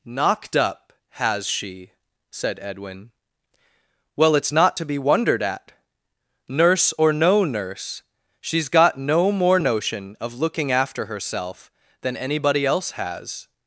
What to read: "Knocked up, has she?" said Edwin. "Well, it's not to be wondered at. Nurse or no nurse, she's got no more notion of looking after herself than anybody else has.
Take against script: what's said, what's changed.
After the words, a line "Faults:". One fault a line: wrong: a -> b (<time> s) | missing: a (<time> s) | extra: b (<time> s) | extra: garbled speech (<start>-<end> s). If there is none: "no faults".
"Knocked up, has she?" said Edwin. "Well, it's not to be wondered at. Nurse or no nurse, she's got no more notion of looking after herself than anybody else has.
Faults:
no faults